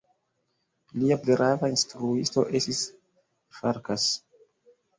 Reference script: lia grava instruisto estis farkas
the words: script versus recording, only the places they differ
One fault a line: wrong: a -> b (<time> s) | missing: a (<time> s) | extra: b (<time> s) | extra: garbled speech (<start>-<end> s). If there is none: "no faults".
no faults